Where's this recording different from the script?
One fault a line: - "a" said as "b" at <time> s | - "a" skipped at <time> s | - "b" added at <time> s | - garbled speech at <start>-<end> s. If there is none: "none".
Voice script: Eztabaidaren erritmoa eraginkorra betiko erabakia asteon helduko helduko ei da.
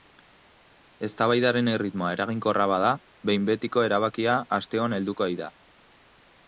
- "bada behin" added at 2.7 s
- "helduko" skipped at 5.3 s